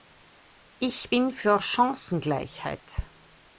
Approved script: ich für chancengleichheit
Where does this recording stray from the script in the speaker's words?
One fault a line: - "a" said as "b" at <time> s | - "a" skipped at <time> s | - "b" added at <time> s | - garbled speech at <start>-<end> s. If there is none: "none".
- "bin" added at 1.1 s